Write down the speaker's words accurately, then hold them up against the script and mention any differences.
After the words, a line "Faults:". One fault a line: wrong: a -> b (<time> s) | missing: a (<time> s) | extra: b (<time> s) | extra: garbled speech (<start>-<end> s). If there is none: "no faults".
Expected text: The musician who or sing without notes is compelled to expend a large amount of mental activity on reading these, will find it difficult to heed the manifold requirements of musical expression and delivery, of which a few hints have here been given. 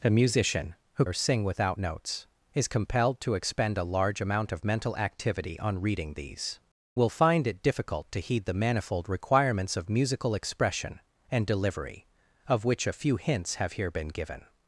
The musician who or sing without notes is compelled to expend a large amount of mental activity on reading these, will find it difficult to heed the manifold requirements of musical expression and delivery, of which a few hints have here been given.
Faults:
no faults